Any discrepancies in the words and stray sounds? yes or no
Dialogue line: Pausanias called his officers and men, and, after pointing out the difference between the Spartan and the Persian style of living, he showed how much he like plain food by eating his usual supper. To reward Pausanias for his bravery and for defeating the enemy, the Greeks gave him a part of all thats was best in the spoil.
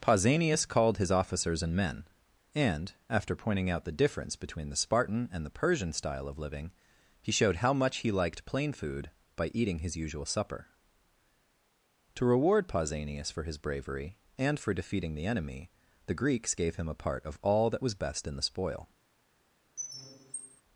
yes